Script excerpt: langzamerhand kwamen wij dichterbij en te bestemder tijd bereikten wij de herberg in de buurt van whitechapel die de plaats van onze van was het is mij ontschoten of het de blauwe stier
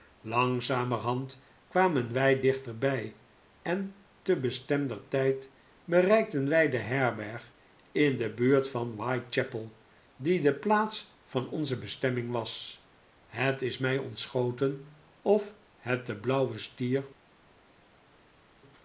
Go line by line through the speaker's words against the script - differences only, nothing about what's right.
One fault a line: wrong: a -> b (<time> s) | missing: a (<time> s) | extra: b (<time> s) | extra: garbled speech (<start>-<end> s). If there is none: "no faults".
wrong: van -> bestemming (11.8 s)